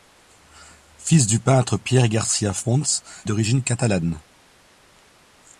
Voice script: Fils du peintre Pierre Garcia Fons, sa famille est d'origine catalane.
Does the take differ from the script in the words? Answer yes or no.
yes